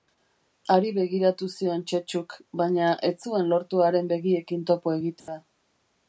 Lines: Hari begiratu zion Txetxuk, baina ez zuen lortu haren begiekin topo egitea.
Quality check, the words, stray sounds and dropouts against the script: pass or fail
fail